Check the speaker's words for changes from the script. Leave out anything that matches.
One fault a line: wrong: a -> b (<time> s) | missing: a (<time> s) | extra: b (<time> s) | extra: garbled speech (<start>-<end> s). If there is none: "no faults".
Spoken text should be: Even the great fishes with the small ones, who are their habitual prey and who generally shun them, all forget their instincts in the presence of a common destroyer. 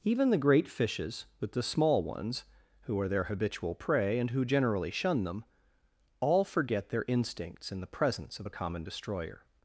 no faults